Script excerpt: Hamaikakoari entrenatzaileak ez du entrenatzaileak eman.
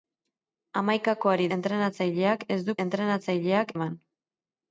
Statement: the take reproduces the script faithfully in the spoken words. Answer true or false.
true